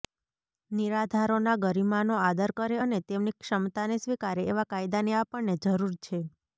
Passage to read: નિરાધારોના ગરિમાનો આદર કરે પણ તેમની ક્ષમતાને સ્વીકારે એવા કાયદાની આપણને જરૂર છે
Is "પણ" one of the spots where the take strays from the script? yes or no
yes